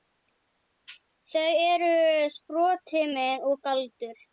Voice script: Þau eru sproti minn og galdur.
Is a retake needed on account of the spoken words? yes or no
no